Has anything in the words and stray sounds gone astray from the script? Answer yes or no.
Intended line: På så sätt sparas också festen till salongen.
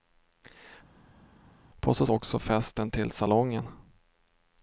yes